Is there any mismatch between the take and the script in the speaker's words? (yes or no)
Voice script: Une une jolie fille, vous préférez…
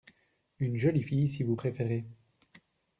yes